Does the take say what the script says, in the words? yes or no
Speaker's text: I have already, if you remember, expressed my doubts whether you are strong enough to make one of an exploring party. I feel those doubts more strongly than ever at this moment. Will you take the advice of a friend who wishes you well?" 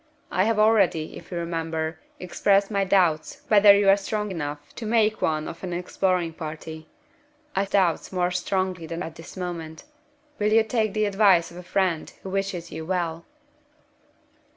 no